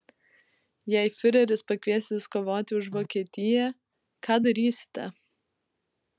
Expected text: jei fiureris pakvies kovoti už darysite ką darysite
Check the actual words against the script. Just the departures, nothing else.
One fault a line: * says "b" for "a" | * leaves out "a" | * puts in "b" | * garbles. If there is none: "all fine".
* puts in "jus"
* says "vokietiją" for "darysite"